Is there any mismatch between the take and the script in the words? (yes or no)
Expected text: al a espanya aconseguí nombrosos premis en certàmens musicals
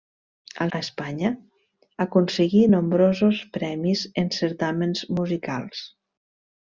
no